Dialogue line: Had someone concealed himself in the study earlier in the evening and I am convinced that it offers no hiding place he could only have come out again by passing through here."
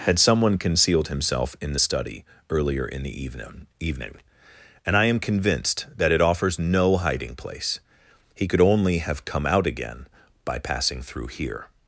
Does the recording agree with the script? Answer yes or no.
no